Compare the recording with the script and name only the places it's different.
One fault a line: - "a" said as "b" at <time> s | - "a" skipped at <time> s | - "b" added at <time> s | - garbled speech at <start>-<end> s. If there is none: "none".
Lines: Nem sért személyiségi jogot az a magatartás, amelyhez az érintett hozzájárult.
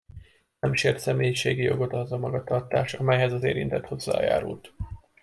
none